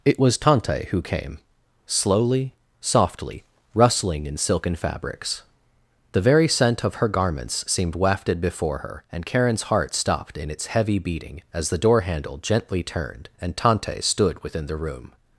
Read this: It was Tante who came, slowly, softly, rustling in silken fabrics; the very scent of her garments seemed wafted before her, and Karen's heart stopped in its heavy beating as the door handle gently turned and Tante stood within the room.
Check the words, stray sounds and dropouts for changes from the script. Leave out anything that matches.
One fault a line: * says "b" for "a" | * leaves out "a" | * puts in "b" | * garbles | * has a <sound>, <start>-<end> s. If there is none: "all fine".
all fine